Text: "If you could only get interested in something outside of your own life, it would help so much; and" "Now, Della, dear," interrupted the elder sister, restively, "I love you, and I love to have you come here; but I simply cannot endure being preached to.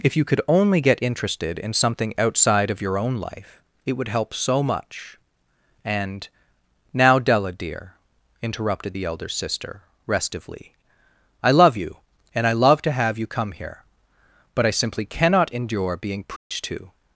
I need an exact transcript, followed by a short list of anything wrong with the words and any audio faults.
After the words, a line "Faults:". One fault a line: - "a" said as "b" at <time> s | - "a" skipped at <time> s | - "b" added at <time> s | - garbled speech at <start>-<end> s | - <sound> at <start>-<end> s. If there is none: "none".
"If you could only get interested in something outside of your own life, it would help so much; and" "Now, Della, dear," interrupted the elder sister, restively, "I love you, and I love to have you come here; but I simply cannot endure being preached to.
Faults:
- dropout at 16.4-16.5 s